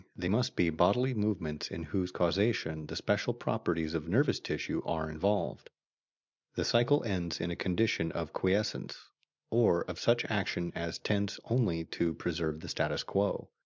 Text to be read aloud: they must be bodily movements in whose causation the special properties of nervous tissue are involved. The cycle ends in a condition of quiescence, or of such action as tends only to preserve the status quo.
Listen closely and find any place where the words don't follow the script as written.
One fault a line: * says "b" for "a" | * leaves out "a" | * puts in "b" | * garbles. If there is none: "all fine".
all fine